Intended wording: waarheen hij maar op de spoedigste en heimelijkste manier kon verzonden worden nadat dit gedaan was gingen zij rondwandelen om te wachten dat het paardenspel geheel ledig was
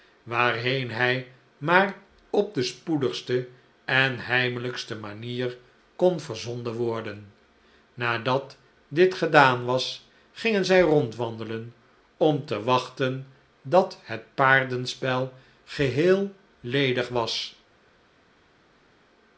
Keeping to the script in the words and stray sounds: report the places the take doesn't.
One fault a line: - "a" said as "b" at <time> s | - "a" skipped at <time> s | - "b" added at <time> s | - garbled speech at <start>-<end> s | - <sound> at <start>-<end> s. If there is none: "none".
none